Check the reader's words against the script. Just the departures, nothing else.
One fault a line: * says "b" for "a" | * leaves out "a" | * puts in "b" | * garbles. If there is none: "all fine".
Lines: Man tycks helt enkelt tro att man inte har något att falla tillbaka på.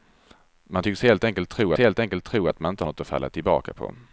* puts in "helt enkelt tro"
* leaves out "har"